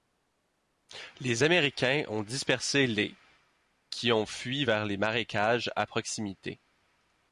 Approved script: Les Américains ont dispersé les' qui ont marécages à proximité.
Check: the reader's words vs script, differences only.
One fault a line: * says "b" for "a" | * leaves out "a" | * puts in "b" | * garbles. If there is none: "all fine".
* puts in "fui vers les"